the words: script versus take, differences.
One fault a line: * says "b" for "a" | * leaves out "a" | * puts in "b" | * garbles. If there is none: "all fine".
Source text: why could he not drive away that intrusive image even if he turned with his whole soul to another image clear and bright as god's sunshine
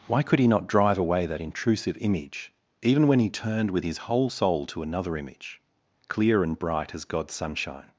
* says "when" for "if"